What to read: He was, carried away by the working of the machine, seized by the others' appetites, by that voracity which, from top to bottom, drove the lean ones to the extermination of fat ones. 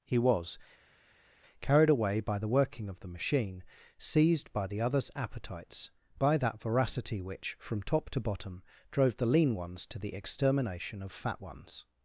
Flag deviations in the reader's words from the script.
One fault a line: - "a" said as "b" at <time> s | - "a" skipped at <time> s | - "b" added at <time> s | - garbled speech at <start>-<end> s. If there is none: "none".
none